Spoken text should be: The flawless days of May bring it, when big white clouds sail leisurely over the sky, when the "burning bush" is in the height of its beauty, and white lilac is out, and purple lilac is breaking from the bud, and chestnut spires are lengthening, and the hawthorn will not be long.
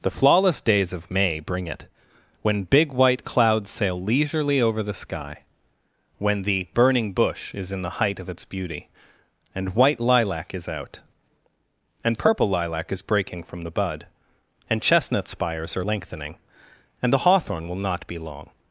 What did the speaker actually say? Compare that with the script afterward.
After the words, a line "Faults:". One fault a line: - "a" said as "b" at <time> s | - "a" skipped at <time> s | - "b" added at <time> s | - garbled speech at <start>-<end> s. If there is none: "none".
The flawless days of May bring it, when big white clouds sail leisurely over the sky, when the "burning bush" is in the height of its beauty, and white lilac is out, and purple lilac is breaking from the bud, and chestnut spires are lengthening, and the hawthorn will not be long.
Faults:
none